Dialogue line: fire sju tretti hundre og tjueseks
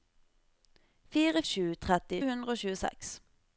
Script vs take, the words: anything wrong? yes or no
no